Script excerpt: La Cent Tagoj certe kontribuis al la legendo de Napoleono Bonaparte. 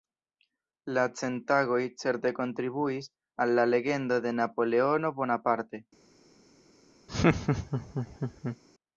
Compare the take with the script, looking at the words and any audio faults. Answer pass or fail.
fail